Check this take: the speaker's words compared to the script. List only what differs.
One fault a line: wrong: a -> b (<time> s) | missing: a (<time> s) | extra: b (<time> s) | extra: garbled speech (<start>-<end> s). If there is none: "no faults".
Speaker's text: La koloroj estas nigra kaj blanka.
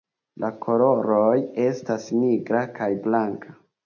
no faults